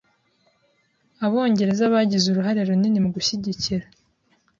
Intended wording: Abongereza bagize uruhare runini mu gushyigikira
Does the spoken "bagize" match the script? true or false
true